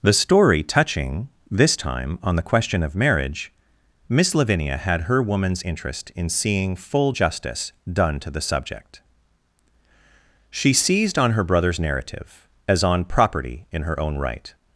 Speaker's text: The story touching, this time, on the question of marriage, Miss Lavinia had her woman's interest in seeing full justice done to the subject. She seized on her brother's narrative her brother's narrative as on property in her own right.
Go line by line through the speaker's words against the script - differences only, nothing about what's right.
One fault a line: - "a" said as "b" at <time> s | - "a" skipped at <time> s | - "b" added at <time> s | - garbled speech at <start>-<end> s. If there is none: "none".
- "her brother's narrative" skipped at 12.5 s